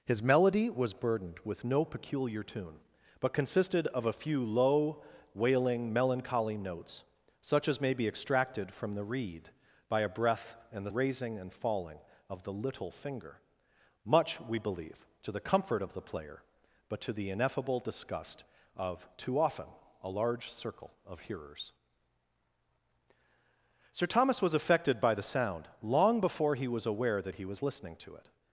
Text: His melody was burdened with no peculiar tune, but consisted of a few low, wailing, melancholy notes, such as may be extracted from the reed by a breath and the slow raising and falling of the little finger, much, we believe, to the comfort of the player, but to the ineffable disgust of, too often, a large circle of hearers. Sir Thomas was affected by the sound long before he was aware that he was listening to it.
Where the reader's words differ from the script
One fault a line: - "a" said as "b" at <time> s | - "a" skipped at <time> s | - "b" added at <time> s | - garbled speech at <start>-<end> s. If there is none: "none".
- "slow" skipped at 10.9 s